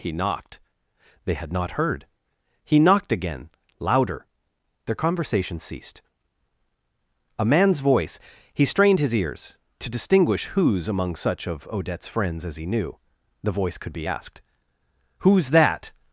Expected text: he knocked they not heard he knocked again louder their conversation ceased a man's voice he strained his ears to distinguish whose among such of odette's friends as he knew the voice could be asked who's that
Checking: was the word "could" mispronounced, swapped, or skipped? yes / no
no